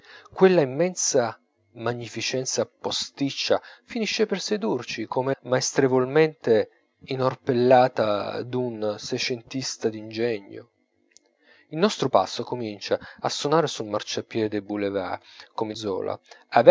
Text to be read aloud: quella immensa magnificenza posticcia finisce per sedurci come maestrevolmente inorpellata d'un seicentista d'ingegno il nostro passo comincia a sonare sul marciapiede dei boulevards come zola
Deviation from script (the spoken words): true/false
false